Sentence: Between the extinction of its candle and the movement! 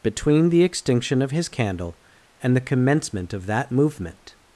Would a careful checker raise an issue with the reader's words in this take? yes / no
yes